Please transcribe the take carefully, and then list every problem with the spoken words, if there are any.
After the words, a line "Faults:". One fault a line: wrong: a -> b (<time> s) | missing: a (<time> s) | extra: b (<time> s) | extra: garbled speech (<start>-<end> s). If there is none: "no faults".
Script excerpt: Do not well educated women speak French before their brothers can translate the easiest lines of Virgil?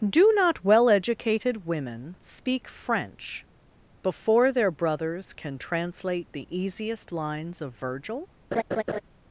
Do not well educated women speak French before their brothers can translate the easiest lines of Virgil?
Faults:
no faults